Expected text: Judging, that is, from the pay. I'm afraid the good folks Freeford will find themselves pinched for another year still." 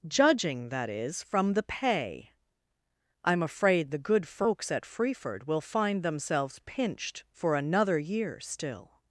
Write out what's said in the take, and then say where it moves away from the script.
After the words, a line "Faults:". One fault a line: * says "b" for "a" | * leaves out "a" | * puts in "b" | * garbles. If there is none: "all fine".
Judging, that is, from the pay. I'm afraid the good folks at Freeford will find themselves pinched for another year still."
Faults:
* puts in "at"